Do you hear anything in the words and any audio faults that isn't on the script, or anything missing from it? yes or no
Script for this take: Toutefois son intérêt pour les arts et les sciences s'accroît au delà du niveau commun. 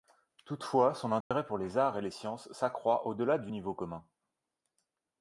yes